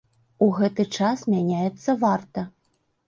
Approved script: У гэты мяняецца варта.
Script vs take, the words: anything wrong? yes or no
yes